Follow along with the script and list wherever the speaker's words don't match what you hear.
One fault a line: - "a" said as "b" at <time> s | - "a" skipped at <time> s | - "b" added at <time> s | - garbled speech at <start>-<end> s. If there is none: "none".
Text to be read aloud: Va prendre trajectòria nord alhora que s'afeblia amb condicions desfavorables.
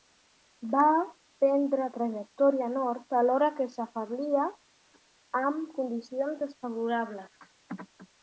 none